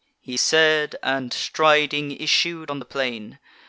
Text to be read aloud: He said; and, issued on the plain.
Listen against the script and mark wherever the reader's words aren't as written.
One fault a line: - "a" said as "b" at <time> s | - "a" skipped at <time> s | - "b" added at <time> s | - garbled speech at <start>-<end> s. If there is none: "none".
- "striding" added at 1.3 s